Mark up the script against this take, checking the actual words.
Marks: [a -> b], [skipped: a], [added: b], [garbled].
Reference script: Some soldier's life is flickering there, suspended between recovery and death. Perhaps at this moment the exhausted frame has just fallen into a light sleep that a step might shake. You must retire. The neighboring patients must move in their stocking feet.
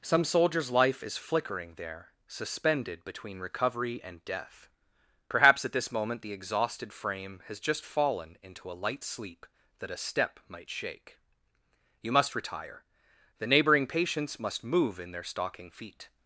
Some soldier's life is flickering there, suspended between recovery and death. Perhaps at this moment the exhausted frame has just fallen into a light sleep that a step might shake. You must retire. The neighboring patients must move in their stocking feet.